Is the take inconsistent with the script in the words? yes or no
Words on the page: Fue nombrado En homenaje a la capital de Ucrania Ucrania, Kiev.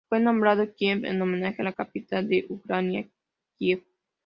yes